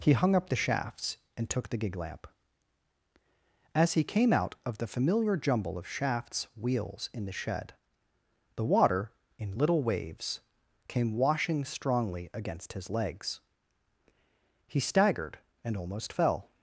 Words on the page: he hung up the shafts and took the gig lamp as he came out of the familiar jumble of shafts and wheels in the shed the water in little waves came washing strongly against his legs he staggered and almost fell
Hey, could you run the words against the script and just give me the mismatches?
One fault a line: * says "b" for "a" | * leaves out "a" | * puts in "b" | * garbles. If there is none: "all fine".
* leaves out "and"